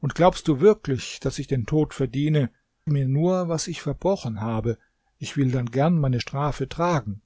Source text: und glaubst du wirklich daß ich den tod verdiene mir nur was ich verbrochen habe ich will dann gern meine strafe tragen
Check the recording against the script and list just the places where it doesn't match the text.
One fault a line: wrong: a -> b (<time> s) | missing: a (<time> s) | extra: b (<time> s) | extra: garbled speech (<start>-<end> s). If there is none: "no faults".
no faults